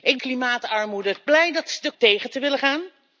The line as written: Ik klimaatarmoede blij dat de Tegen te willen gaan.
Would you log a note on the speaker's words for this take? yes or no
no